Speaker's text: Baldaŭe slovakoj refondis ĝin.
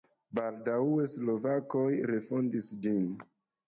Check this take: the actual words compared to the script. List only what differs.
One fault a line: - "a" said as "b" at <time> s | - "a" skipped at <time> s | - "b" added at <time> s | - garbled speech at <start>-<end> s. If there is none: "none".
none